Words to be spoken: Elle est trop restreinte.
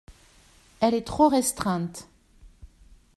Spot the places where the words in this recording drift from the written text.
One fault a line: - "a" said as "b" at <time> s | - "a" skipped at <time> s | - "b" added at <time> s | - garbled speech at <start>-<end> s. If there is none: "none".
none